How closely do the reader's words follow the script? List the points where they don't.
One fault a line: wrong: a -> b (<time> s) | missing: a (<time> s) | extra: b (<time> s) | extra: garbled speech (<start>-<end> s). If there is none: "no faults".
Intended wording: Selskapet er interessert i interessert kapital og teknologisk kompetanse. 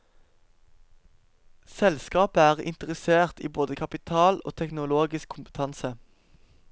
wrong: interessert -> både (3.5 s)